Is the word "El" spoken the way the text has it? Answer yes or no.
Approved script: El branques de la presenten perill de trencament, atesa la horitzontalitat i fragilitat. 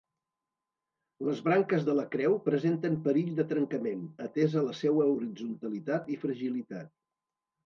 no